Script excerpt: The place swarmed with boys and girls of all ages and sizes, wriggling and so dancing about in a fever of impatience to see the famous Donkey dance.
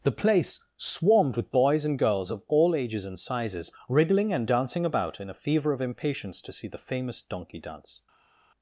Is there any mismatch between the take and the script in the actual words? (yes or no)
yes